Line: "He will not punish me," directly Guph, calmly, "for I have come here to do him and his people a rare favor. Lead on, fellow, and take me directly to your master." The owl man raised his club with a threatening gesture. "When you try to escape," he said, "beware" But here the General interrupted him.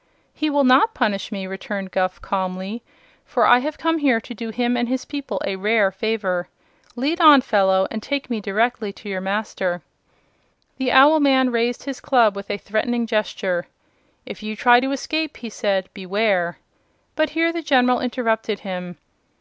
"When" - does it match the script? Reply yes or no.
no